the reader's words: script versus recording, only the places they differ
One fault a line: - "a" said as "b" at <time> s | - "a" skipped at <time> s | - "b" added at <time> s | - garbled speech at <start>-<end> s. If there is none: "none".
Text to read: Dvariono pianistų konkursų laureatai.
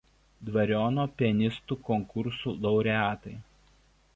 none